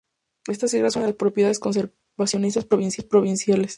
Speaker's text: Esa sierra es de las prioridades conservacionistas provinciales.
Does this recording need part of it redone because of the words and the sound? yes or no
yes